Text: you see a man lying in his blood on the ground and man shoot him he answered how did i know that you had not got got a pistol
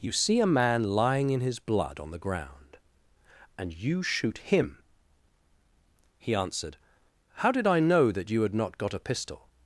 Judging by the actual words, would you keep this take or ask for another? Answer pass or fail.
fail